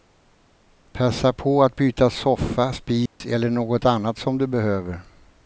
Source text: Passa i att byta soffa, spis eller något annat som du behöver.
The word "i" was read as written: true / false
false